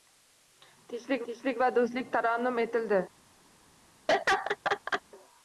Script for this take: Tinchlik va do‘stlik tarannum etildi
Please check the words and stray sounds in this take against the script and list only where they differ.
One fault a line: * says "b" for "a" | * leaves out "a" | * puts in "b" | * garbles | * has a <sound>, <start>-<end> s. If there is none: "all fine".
* puts in "tinchlik"
* has a laugh, 4.1-5.0 s